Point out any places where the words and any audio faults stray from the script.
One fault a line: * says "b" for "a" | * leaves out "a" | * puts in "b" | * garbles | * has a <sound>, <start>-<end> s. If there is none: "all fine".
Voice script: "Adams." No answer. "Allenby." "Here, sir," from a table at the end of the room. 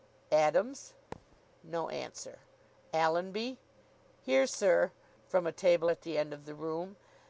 * has a thud, 1.1-1.4 s